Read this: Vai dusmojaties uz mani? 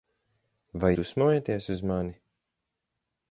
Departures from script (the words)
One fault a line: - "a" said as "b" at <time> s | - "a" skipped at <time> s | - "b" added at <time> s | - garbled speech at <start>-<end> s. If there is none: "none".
none